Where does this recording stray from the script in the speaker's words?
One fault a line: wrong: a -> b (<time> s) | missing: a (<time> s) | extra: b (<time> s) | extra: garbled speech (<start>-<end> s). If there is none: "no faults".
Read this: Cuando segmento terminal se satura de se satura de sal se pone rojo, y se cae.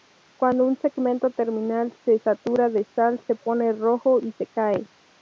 extra: un (0.6 s)
missing: se satura de (2.9 s)